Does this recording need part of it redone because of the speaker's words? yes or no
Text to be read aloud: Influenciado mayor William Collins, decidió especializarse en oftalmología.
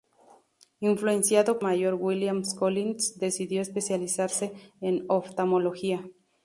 no